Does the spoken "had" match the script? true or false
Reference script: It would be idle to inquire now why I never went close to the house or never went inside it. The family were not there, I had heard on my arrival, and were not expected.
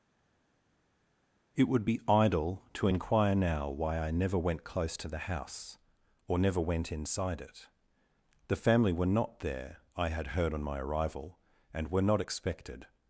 true